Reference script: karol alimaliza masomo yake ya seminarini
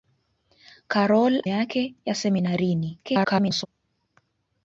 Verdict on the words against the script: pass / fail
fail